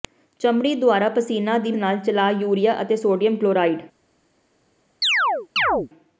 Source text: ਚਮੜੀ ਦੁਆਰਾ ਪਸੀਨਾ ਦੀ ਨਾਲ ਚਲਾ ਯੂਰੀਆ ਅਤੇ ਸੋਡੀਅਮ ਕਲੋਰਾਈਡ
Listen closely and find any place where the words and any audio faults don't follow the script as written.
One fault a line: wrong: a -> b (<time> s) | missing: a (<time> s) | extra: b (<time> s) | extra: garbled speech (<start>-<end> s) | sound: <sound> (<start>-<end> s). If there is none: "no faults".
sound: chirp (5.0-5.9 s)